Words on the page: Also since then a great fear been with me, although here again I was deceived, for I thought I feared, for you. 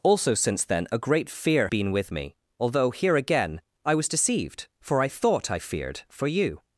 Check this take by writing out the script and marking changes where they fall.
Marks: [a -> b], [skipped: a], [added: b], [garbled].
Also since then a great fear been with me, although here again I was deceived, for I thought I feared, for you.